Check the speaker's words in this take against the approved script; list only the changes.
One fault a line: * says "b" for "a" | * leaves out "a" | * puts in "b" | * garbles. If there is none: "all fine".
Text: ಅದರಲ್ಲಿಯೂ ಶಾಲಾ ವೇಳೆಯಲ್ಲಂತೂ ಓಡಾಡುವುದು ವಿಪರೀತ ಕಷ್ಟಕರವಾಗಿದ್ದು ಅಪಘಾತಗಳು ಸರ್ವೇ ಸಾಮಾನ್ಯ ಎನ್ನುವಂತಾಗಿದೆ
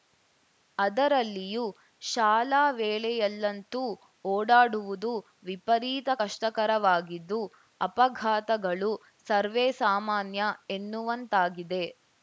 all fine